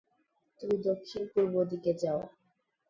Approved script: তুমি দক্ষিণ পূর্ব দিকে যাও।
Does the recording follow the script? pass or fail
pass